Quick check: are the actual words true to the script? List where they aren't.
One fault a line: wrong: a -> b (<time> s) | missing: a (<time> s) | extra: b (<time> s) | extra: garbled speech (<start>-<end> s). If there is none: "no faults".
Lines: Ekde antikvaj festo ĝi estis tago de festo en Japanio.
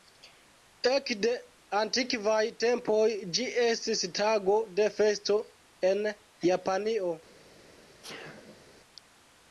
wrong: festo -> tempoj (2.6 s)